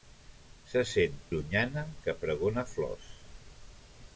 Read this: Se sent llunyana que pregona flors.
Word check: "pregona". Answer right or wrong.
right